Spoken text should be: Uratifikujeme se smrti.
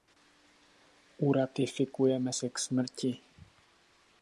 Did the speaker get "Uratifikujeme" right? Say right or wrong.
right